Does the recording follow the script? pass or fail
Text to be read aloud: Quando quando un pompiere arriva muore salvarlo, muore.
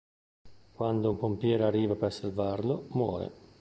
fail